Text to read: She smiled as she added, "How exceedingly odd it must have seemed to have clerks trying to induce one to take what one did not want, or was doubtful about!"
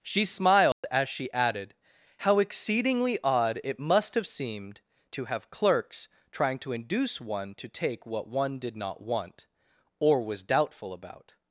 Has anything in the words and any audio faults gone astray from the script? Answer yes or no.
yes